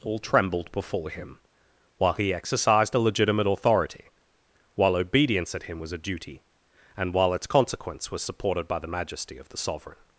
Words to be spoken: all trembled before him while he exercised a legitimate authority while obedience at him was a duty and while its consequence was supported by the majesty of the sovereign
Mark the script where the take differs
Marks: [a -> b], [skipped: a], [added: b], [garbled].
all trembled before him while he exercised a legitimate authority while obedience at him was a duty and while its consequence was supported by the majesty of the sovereign